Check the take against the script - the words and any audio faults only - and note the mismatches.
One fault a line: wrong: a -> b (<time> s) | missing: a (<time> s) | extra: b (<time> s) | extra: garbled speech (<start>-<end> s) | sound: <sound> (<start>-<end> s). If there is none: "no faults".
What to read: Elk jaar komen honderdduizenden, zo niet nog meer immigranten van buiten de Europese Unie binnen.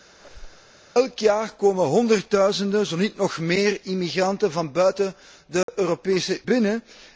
sound: squeak (0.2-0.7 s)
sound: dropout (5.6-5.7 s)
missing: Unie (6.4 s)